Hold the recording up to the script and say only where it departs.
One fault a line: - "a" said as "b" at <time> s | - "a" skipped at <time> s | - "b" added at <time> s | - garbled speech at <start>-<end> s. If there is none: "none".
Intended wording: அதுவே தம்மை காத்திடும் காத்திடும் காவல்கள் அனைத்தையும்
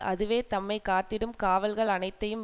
- "காத்திடும்" skipped at 1.3 s